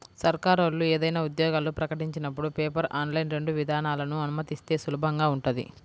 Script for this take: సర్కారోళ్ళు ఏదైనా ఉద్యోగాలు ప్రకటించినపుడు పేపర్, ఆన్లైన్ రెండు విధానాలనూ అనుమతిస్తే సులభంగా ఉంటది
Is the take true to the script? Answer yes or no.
yes